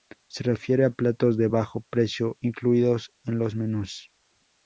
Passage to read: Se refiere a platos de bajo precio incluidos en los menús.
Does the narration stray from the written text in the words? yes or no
no